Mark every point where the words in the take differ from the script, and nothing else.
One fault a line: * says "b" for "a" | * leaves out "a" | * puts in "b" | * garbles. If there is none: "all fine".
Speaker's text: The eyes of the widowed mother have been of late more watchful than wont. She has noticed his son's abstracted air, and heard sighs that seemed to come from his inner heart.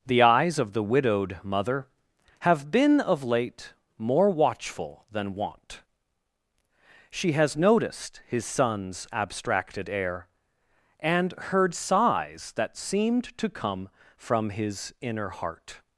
all fine